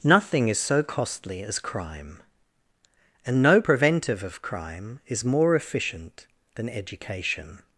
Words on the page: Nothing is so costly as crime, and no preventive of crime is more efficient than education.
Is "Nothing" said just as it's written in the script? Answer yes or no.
yes